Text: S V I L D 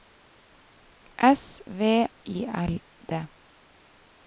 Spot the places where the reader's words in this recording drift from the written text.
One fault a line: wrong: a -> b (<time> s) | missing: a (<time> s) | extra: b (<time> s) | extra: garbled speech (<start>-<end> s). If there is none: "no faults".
no faults